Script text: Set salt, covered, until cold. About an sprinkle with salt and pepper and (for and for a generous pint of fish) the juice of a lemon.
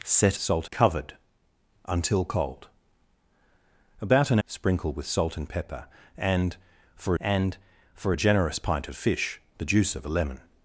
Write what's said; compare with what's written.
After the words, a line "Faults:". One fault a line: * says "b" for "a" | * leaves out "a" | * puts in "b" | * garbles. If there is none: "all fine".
Set salt, covered, until cold. About an sprinkle with salt and pepper and (for and for a generous pint of fish) the juice of a lemon.
Faults:
all fine